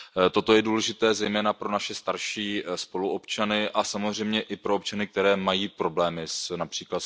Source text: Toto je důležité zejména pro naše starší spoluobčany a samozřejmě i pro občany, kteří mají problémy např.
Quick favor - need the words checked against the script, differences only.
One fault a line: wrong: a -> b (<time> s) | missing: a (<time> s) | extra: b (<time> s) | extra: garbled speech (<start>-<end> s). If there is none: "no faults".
no faults